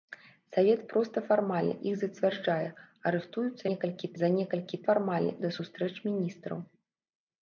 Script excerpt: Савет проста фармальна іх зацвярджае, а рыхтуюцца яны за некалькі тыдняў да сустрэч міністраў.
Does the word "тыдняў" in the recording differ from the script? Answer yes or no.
yes